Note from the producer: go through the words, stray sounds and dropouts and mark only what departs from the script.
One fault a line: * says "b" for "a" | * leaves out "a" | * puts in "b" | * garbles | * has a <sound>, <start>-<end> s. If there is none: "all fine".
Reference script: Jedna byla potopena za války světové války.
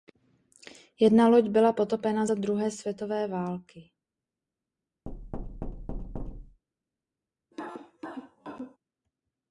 * puts in "loď"
* says "druhé" for "války"
* has a thud, 5.1-6.6 s
* has a cough, 7.5-8.8 s